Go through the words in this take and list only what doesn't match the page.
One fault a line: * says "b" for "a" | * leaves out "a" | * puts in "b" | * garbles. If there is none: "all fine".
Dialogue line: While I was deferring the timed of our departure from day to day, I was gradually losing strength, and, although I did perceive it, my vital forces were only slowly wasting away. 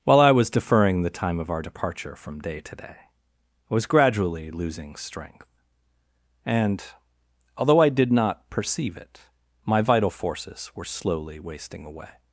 * says "time" for "timed"
* puts in "not"
* leaves out "only"